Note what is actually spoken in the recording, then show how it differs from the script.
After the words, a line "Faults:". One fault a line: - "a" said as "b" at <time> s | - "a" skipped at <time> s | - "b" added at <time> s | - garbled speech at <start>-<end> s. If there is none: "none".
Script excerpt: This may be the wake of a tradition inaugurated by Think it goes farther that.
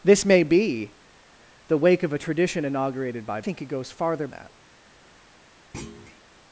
This may be the wake of a tradition inaugurated by Think it goes farther that.
Faults:
none